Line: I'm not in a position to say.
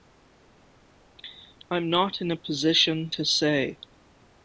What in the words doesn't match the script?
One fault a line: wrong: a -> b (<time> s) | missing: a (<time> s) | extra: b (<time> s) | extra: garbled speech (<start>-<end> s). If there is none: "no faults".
no faults